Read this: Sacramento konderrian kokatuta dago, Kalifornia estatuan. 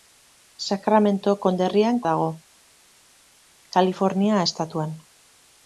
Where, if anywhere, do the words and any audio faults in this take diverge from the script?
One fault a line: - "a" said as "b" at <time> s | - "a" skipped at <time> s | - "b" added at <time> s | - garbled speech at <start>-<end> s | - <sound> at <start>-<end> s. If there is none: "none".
- "kokatuta" skipped at 2.0 s